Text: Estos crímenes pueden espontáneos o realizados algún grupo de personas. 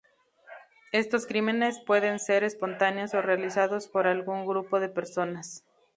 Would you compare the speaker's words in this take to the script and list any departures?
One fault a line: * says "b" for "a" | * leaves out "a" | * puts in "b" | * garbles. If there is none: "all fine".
* puts in "ser"
* puts in "por"